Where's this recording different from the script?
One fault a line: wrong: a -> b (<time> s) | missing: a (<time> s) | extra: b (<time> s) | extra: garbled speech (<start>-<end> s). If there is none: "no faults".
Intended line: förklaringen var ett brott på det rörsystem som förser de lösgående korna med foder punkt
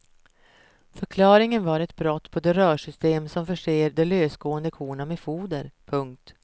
no faults